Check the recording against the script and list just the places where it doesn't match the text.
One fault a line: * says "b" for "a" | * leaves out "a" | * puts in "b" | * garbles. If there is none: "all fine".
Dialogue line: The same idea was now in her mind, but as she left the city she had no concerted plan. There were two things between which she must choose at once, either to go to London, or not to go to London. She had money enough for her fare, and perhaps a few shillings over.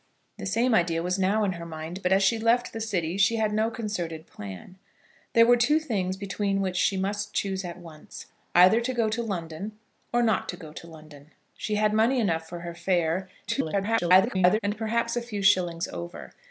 * garbles